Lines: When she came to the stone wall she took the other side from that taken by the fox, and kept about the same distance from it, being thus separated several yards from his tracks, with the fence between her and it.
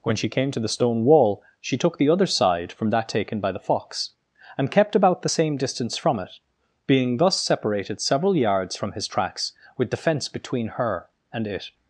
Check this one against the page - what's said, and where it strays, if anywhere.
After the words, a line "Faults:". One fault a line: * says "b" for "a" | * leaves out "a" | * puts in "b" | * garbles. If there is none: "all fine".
When she came to the stone wall she took the other side from that taken by the fox, and kept about the same distance from it, being thus separated several yards from his tracks, with the fence between her and it.
Faults:
all fine